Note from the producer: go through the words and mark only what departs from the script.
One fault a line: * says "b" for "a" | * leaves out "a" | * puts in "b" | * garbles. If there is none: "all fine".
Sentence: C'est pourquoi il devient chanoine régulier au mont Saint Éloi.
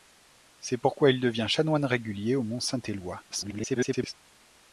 * garbles